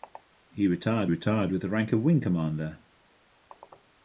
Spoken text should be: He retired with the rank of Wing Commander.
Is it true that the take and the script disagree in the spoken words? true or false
true